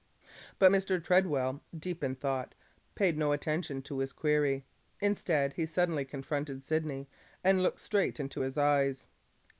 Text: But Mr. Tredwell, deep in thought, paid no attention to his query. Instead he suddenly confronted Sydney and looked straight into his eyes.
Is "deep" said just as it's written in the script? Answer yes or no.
yes